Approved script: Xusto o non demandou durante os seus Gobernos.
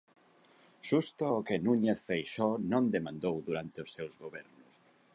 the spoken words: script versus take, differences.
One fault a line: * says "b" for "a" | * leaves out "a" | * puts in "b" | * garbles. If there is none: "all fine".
* puts in "que Núñez Feixóo"